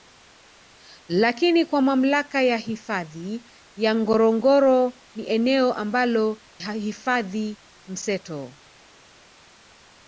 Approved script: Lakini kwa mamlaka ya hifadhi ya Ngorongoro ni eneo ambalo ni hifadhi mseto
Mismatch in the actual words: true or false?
true